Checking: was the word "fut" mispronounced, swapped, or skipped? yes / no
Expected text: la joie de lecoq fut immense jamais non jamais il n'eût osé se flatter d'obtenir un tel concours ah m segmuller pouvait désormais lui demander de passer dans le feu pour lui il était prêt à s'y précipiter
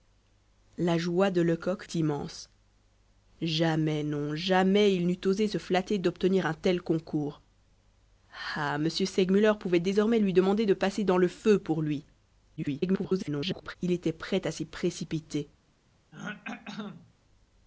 yes